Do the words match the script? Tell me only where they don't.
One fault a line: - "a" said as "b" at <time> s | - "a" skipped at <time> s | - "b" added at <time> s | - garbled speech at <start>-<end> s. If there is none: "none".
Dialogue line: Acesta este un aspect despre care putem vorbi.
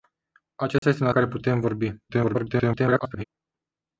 - "aspect despre" skipped at 1.1 s
- garbled speech at 2.1-3.2 s